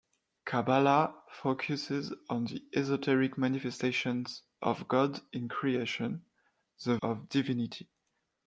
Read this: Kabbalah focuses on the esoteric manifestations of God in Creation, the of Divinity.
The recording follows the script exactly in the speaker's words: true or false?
true